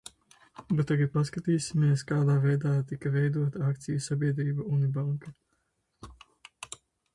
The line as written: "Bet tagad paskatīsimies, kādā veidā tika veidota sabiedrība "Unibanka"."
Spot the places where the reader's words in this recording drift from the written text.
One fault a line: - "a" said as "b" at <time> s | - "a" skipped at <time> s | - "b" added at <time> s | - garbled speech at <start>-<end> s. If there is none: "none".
- "akciju" added at 3.7 s